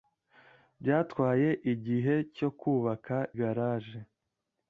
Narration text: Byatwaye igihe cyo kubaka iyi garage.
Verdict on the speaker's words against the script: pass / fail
fail